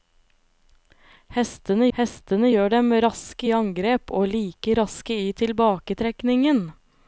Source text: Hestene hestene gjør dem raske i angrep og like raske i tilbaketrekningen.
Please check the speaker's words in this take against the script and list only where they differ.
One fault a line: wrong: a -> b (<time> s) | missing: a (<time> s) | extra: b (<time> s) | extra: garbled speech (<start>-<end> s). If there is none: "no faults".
no faults